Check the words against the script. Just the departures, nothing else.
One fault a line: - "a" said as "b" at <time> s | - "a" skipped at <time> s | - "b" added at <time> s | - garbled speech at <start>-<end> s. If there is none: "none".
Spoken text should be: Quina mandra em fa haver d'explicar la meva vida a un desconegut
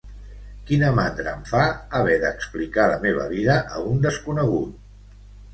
none